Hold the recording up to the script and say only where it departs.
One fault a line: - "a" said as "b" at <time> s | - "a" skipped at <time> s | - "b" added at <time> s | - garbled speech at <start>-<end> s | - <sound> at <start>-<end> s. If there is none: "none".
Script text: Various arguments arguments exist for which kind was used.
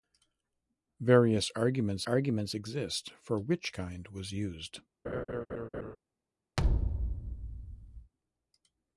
- laugh at 5.0-6.0 s
- thud at 6.6-8.1 s